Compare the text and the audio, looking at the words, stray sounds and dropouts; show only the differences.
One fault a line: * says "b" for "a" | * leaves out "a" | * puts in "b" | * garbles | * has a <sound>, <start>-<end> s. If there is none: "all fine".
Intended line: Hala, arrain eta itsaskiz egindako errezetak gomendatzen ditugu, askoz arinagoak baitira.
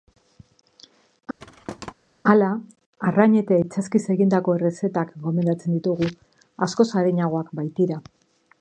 * has a thud, 1.4-1.9 s